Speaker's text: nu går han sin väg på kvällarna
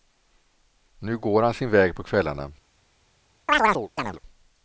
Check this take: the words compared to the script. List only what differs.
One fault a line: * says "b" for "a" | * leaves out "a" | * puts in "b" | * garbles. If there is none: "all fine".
all fine